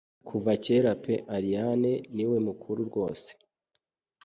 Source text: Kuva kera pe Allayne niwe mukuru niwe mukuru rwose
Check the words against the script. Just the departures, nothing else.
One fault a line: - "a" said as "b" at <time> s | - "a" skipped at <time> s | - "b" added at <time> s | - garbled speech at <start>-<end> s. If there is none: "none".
- "niwe mukuru" skipped at 2.8 s